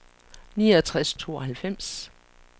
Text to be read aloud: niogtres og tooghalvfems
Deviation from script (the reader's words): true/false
false